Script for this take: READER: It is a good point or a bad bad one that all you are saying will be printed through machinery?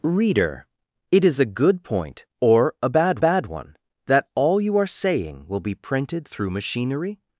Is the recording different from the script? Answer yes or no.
no